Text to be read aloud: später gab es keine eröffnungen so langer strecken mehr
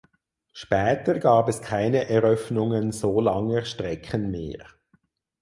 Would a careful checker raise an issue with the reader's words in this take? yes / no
no